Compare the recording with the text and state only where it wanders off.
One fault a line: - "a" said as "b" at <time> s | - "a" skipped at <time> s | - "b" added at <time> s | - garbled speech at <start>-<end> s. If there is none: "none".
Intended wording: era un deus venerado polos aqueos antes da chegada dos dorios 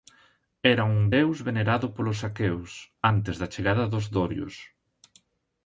none